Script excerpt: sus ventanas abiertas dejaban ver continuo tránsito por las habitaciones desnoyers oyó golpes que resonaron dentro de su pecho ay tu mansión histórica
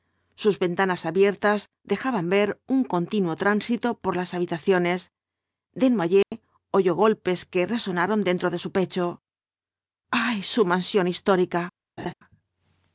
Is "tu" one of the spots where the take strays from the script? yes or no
yes